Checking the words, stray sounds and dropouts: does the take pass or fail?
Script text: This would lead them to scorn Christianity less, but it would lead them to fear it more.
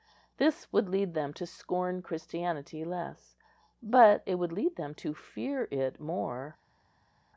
pass